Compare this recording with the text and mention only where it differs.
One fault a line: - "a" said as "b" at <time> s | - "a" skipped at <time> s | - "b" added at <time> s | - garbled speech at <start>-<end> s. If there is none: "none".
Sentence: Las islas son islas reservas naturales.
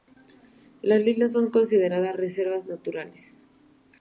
- "islas" said as "consideradas" at 1.5 s